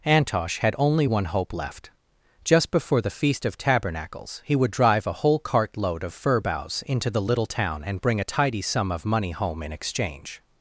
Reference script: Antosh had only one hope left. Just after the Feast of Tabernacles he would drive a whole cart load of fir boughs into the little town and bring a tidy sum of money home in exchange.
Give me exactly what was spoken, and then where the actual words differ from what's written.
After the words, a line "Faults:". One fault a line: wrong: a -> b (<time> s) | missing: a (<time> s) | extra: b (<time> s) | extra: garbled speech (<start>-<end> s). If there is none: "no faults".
Antosh had only one hope left. Just before the Feast of Tabernacles he would drive a whole cart load of fir boughs into the little town and bring a tidy sum of money home in exchange.
Faults:
wrong: after -> before (2.7 s)